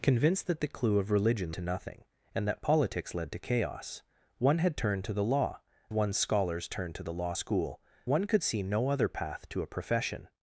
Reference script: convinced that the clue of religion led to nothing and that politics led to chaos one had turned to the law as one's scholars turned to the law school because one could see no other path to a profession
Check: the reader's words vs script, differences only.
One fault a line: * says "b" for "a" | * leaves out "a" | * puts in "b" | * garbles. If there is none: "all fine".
* leaves out "led"
* leaves out "as"
* leaves out "because"